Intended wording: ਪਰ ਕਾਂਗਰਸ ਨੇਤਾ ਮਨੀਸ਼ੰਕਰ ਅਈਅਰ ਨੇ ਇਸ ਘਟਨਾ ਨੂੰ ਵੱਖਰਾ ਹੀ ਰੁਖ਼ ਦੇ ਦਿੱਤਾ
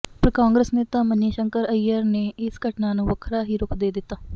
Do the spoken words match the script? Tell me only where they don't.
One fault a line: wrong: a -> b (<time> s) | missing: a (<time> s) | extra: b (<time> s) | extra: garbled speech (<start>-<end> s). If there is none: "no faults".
no faults